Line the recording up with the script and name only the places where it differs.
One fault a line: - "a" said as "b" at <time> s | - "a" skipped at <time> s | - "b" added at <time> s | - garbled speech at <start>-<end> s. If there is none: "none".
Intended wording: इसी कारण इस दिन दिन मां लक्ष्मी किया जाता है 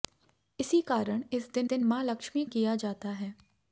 none